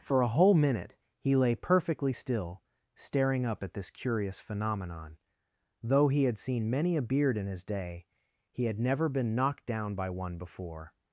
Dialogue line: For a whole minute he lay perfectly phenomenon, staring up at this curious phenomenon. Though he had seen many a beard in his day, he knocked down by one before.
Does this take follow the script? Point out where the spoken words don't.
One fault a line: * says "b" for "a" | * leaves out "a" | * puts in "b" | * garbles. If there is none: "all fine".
* says "still" for "phenomenon"
* puts in "had never been"